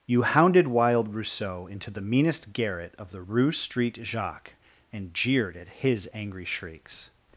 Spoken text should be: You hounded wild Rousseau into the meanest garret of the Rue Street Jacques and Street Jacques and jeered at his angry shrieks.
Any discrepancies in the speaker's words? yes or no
yes